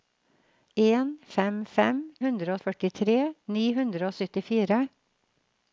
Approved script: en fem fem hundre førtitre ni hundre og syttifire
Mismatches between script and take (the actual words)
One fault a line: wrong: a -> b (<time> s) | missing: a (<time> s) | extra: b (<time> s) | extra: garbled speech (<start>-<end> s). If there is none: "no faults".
no faults